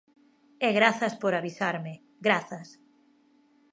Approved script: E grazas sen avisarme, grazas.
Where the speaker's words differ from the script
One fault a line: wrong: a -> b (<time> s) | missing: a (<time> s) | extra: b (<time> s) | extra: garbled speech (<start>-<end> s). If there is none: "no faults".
wrong: sen -> por (1.2 s)